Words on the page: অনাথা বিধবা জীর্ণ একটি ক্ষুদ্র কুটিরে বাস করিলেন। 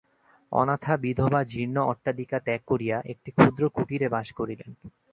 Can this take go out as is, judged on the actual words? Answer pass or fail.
fail